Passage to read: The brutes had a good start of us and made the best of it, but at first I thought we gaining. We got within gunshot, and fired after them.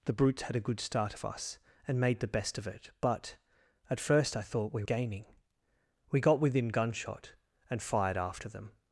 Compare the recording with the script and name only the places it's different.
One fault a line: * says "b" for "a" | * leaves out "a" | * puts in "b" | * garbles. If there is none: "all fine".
all fine